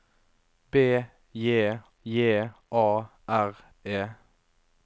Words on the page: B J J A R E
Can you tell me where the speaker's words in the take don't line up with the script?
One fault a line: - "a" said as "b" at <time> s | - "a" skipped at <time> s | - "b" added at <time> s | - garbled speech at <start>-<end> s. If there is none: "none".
none